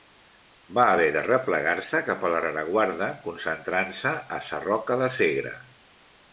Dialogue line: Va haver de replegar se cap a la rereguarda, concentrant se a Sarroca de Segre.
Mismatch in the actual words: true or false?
false